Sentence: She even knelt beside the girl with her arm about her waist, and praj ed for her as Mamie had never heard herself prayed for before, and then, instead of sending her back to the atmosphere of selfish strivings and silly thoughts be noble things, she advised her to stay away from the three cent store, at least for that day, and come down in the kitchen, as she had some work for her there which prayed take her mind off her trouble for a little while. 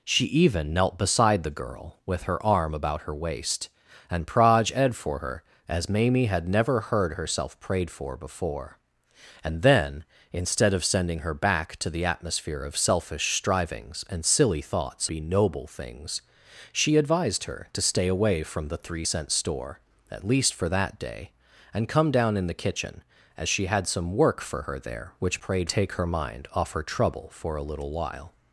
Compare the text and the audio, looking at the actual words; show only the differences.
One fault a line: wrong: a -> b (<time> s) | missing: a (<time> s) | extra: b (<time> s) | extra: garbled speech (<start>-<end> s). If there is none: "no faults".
no faults